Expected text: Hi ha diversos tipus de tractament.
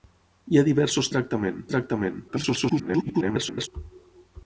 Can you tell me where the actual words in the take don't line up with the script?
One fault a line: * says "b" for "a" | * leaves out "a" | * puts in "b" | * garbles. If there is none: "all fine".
* says "tractament" for "tipus"
* garbles